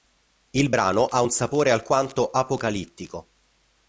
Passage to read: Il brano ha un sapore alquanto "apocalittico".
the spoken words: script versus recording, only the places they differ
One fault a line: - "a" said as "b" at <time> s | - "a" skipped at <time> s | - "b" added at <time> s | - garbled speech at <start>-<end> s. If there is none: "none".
none